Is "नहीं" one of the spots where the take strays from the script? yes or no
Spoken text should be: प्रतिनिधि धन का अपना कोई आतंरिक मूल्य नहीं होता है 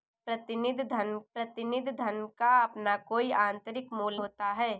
yes